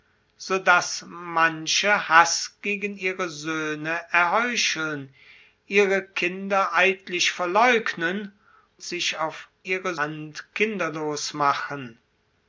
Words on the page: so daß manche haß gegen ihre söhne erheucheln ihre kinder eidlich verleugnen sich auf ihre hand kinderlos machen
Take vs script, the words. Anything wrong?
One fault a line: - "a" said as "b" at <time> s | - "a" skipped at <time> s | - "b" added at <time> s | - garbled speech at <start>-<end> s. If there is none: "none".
none